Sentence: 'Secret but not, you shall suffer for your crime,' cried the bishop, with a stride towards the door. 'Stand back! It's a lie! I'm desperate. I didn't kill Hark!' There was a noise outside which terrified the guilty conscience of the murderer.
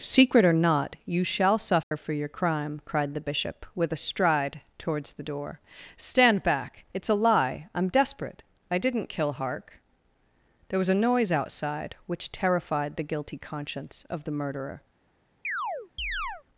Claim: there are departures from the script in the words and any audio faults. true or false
true